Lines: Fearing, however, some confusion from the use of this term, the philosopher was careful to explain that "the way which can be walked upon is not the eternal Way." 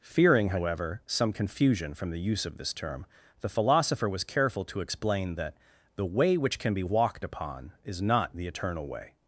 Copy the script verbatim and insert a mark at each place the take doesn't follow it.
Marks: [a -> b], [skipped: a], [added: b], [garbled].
Fearing, however, some confusion from the use of this term, the philosopher was careful to explain that "the way which can be walked upon is not the eternal Way."